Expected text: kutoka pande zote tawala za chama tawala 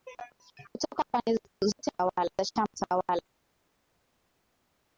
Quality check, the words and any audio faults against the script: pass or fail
pass